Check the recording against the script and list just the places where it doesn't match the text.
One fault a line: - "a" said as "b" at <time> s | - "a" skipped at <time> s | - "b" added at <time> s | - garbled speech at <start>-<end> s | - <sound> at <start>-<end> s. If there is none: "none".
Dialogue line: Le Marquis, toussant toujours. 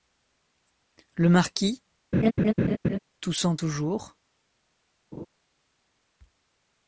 - laugh at 2.1-3.0 s
- laugh at 5.1-5.3 s